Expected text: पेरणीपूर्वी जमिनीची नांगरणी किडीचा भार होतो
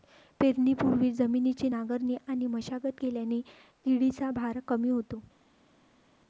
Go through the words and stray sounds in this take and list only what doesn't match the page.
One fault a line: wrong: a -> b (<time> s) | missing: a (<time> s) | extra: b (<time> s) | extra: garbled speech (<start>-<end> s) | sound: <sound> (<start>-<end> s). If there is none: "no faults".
extra: आणि मशागत केल्याने (2.3 s)
extra: कमी (4.7 s)